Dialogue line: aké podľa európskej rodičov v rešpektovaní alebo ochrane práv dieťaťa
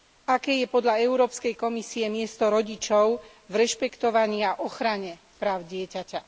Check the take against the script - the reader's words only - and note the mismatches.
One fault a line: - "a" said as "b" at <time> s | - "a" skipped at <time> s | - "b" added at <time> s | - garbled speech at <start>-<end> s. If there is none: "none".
- "je" added at 0.6 s
- "komisie miesto" added at 1.6 s
- "alebo" said as "a" at 4.4 s